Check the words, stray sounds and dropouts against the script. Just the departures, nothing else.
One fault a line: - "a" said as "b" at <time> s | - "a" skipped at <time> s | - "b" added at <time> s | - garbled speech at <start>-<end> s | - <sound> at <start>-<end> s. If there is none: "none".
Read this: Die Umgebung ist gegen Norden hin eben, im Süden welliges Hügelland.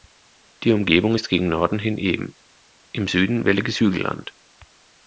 none